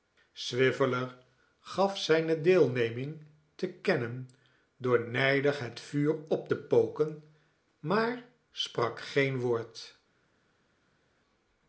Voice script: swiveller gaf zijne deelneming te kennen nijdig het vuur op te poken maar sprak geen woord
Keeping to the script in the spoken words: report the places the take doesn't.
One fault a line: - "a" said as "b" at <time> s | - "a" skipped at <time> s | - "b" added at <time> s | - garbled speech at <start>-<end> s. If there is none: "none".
- "door" added at 4.8 s